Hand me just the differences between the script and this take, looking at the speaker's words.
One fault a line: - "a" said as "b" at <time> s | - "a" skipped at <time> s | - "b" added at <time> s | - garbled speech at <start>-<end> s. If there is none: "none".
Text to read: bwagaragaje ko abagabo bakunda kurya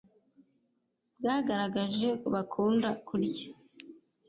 - "ko abagabo" skipped at 2.1 s